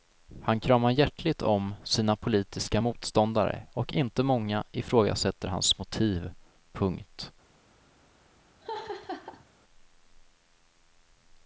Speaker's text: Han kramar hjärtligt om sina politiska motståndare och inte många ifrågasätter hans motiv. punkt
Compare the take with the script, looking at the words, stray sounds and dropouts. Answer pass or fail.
fail